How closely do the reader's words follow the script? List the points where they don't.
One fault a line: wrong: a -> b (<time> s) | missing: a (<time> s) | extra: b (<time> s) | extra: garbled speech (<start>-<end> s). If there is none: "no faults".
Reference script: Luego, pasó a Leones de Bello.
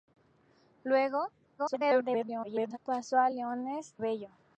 extra: garbled speech (1.6-2.8 s)
missing: de (4.0 s)